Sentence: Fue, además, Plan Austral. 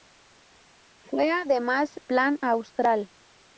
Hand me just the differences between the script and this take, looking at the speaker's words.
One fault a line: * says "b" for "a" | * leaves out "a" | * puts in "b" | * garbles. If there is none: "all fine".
all fine